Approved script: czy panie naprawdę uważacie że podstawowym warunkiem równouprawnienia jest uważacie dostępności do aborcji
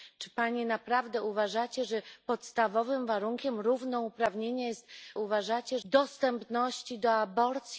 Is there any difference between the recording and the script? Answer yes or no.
no